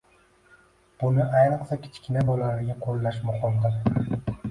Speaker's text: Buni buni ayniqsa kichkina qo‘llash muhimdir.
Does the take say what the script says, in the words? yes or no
no